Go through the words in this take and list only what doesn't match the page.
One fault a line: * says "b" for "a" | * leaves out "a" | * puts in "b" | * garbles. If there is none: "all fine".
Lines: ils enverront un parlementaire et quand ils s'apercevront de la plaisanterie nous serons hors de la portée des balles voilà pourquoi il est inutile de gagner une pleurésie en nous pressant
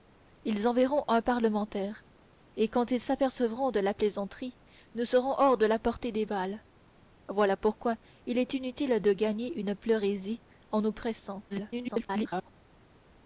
* garbles